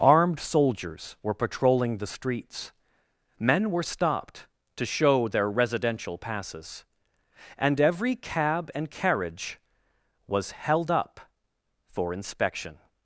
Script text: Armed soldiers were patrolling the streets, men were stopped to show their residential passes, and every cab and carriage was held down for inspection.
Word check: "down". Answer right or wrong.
wrong